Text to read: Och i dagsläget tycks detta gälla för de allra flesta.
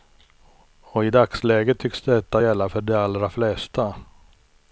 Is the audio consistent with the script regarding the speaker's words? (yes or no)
yes